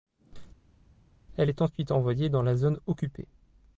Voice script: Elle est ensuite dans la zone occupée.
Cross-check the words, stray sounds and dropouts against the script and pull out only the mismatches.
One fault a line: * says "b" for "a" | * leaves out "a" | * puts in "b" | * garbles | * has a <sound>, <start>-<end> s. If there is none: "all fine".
* puts in "envoyée"